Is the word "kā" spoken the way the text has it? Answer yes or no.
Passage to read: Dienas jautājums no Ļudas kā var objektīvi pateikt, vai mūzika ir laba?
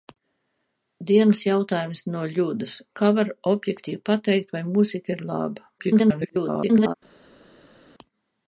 yes